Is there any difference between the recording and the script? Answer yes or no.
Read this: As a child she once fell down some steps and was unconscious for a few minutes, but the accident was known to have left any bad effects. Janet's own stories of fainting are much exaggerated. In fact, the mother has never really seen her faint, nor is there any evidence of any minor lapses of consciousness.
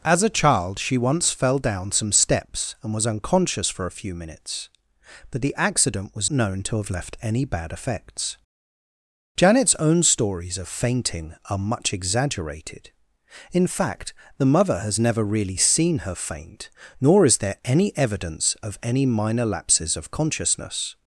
no